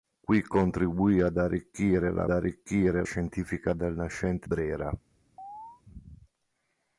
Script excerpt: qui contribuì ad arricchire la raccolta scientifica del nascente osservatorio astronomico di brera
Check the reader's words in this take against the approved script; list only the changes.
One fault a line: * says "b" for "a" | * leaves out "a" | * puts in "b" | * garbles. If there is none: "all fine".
* says "arricchire" for "raccolta"
* leaves out "osservatorio astronomico di"